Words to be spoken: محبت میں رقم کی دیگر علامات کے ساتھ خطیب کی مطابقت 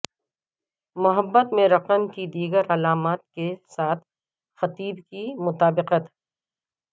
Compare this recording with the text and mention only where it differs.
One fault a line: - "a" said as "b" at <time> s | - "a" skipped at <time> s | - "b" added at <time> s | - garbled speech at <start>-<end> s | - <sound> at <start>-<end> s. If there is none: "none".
none